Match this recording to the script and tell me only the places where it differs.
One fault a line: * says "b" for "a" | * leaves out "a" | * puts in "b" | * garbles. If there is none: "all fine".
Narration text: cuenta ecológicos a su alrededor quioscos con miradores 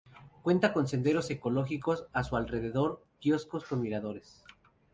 * puts in "con senderos"